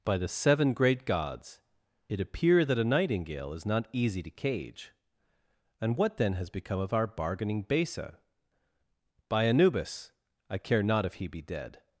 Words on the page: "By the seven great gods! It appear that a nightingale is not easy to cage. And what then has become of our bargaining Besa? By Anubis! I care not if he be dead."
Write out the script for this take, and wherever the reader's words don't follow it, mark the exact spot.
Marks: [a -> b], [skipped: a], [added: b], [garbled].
"By the seven great gods! It appear that a nightingale is not easy to cage. And what then has become of our bargaining Besa? By Anubis! I care not if he be dead."